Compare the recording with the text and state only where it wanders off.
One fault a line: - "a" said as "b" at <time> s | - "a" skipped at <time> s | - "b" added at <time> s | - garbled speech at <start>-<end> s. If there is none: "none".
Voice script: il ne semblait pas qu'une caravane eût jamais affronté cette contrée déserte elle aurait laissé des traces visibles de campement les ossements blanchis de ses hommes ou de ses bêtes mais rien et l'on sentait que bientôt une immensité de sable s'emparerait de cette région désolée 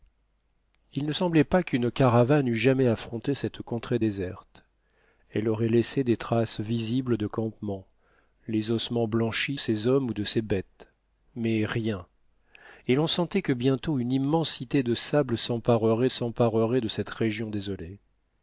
- "de" skipped at 9.6 s
- "s'emparerait" added at 16.1 s